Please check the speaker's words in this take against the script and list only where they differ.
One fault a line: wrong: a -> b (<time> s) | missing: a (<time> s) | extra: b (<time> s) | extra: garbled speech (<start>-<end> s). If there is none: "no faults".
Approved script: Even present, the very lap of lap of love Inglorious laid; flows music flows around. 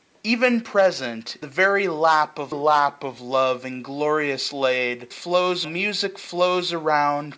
no faults